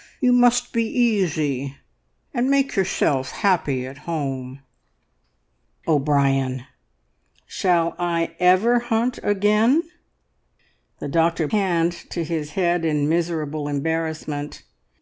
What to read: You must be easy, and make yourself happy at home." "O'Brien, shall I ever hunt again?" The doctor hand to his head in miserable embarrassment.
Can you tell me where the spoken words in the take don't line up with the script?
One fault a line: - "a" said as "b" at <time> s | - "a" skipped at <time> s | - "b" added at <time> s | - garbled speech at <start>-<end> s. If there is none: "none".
none